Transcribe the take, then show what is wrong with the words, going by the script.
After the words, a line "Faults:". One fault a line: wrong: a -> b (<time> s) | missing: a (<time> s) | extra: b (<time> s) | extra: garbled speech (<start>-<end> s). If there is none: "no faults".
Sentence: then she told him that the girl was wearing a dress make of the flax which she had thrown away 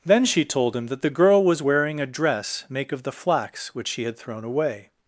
then she told him that the girl was wearing a dress make of the flax which she had thrown away
Faults:
no faults